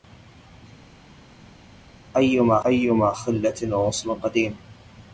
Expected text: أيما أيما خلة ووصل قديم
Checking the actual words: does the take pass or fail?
pass